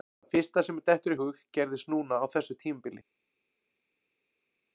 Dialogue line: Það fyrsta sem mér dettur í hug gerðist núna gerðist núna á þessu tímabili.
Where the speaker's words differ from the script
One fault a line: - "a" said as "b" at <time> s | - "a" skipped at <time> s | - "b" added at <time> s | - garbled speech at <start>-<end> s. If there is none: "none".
- "gerðist núna" skipped at 2.2 s